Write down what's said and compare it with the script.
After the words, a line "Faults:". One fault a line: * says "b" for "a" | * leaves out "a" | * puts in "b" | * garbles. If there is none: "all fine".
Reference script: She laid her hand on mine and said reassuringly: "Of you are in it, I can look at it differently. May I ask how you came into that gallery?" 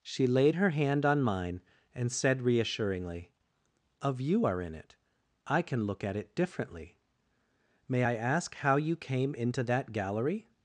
She laid her hand on mine and said reassuringly: "Of you are in it, I can look at it differently. May I ask how you came into that gallery?"
Faults:
all fine